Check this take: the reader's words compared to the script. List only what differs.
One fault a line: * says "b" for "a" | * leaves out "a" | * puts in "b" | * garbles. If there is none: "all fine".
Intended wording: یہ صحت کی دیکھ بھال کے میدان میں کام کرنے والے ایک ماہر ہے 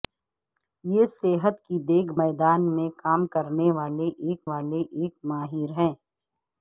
* leaves out "بھال کے"
* puts in "والے ایک"